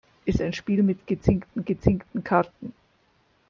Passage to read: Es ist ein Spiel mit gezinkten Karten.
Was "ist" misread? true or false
true